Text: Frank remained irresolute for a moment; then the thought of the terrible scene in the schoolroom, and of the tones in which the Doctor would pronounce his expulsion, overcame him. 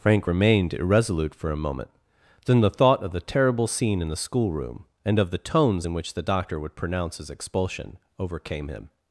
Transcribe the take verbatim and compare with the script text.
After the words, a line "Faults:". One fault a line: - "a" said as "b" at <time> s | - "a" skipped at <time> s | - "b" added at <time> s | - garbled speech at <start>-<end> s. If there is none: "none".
Frank remained irresolute for a moment; then the thought of the terrible scene in the schoolroom, and of the tones in which the Doctor would pronounce his expulsion, overcame him.
Faults:
none